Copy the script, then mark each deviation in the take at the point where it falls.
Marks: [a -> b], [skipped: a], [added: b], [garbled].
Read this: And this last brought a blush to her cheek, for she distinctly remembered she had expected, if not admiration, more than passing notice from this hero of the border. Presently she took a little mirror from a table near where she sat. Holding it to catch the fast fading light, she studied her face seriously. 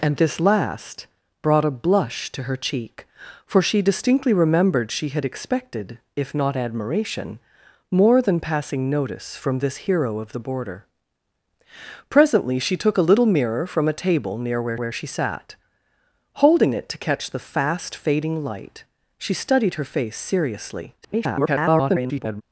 And this last brought a blush to her cheek, for she distinctly remembered she had expected, if not admiration, more than passing notice from this hero of the border. Presently she took a little mirror from a table near where [added: where] she sat. Holding it to catch the fast fading light, she studied her face seriously. [garbled]